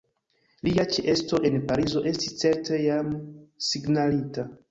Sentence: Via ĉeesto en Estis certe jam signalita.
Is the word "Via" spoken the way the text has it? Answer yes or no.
no